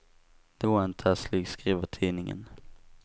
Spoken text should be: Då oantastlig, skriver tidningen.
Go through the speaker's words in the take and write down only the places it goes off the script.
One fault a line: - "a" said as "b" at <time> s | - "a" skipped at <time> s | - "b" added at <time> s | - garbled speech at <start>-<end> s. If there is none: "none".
none